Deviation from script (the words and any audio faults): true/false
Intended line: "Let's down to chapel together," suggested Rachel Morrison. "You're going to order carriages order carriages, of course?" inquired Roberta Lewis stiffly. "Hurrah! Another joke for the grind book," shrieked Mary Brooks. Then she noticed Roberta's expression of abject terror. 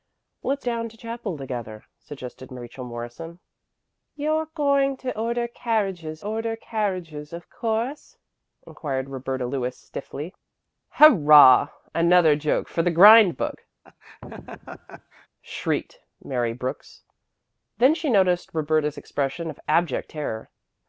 true